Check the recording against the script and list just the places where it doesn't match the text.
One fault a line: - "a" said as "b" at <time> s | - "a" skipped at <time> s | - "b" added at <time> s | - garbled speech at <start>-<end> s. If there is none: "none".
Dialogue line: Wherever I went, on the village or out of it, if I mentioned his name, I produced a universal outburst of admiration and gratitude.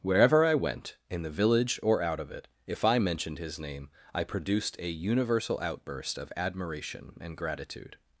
- "on" said as "in" at 1.1 s